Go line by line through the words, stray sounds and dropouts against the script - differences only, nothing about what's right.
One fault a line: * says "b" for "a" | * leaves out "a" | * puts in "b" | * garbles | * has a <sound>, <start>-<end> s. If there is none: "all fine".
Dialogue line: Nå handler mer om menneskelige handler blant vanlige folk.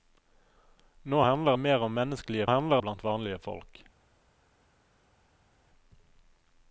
all fine